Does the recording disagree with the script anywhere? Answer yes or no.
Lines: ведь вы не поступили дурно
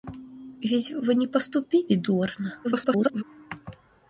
yes